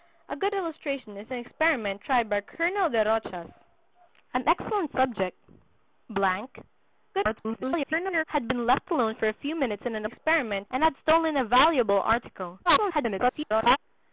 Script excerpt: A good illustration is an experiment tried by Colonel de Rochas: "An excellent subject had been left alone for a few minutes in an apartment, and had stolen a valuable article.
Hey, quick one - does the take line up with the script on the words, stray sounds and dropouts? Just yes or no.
no